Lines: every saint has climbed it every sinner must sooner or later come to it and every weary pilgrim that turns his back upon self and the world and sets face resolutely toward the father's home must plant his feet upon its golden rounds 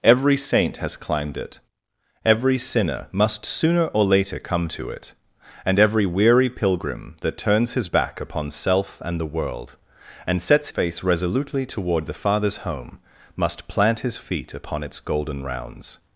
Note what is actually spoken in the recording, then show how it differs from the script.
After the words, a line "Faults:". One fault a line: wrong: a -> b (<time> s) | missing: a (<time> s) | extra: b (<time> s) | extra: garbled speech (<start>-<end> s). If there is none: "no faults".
every saint has climbed it every sinner must sooner or later come to it and every weary pilgrim that turns his back upon self and the world and sets face resolutely toward the father's home must plant his feet upon its golden rounds
Faults:
no faults